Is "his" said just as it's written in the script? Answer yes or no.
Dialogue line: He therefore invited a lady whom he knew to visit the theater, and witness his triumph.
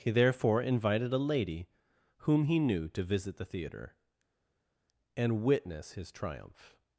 yes